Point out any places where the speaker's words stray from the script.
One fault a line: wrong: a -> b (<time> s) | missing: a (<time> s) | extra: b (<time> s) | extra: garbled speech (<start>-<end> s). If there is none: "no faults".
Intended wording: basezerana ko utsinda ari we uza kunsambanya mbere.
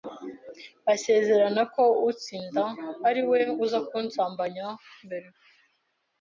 no faults